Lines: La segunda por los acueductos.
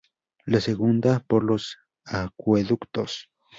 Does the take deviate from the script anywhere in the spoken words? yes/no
no